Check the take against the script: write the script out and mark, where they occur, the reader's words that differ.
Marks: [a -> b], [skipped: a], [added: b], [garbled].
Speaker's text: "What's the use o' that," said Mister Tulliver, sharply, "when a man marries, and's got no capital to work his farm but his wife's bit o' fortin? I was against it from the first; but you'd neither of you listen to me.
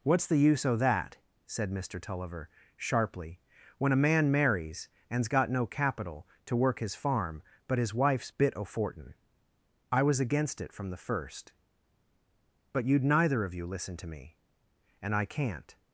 "What's the use o' that," said Mister Tulliver, sharply, "when a man marries, and's got no capital to work his farm but his wife's bit o' fortin? I was against it from the first; but you'd neither of you listen to me. [added: And I can't]